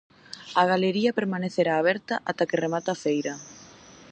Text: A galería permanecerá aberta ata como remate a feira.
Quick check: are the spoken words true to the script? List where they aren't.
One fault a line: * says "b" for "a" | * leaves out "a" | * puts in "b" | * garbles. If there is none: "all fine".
* says "que" for "como"